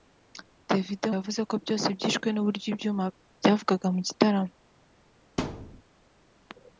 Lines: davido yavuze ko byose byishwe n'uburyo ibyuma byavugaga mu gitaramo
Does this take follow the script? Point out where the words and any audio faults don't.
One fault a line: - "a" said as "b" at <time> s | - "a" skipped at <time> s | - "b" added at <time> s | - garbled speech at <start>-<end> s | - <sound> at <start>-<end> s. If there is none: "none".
- thud at 5.4-5.8 s